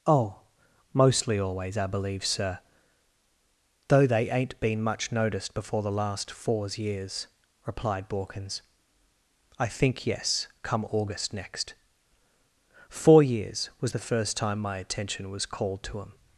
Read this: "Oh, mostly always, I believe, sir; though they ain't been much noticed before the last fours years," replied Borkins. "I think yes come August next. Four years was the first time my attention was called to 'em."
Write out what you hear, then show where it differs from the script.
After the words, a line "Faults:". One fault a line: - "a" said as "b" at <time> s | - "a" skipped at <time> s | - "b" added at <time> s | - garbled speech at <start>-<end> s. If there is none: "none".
"Oh, mostly always, I believe, sir; though they ain't been much noticed before the last fours years," replied Borkins. "I think yes come August next. Four years was the first time my attention was called to 'em."
Faults:
none